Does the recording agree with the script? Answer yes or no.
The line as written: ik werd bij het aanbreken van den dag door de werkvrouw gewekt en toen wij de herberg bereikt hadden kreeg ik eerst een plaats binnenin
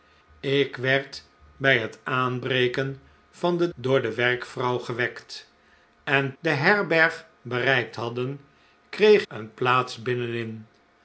no